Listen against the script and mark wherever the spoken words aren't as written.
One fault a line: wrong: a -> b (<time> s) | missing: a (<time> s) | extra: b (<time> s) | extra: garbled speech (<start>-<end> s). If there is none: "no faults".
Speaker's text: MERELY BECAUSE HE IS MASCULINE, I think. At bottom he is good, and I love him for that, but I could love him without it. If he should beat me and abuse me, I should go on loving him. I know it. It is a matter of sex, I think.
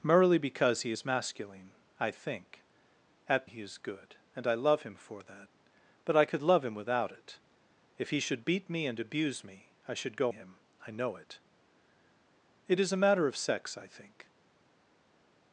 missing: bottom (3.5 s)
missing: on loving (10.3 s)